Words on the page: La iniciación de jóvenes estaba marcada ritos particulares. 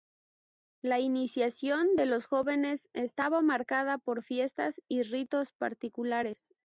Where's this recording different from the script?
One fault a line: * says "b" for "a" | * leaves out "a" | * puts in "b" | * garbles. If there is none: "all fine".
* puts in "los"
* puts in "por fiestas y"